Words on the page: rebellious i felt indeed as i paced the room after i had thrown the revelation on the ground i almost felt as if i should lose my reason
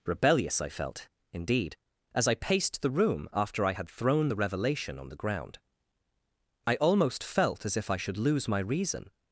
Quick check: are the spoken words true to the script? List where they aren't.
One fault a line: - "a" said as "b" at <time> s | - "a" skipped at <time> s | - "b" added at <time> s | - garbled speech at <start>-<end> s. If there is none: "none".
none